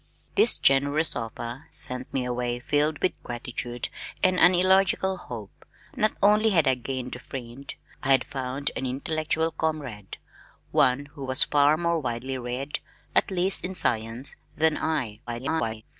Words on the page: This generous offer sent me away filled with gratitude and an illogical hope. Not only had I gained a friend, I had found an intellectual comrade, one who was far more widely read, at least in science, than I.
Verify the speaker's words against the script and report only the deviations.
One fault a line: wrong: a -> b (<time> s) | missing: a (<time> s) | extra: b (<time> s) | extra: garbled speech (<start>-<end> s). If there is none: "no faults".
extra: garbled speech (15.3-15.8 s)